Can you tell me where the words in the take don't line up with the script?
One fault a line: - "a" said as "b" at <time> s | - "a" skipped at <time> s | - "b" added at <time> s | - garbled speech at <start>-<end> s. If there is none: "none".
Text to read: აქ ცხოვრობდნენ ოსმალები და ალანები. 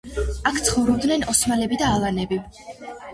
none